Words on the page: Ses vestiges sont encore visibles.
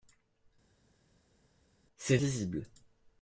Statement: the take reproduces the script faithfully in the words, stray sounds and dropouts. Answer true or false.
false